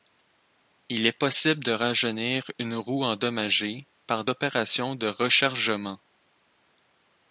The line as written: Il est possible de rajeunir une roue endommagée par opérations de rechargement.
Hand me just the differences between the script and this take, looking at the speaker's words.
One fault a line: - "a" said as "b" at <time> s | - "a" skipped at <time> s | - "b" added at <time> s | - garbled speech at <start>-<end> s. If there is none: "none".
none